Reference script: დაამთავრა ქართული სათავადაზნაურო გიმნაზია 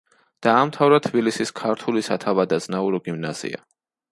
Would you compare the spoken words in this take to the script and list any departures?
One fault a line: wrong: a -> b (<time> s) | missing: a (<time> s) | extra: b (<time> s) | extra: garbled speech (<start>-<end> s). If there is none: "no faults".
extra: თბილისის (1.1 s)